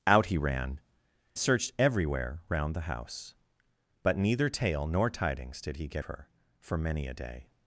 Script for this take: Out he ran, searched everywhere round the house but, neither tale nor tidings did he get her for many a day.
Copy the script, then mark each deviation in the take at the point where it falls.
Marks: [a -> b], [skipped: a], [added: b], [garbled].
Out he ran, searched everywhere round the house but, neither tale nor tidings did he get her for many a day.